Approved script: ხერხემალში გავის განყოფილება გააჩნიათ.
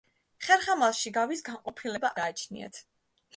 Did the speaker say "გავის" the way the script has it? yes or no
yes